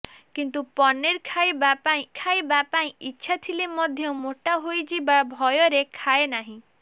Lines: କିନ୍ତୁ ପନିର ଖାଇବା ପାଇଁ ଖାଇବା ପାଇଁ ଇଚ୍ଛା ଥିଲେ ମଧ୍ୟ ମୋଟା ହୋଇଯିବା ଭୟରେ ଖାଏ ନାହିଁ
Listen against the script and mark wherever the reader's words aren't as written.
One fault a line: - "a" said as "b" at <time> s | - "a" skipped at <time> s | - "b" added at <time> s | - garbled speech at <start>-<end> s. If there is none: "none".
none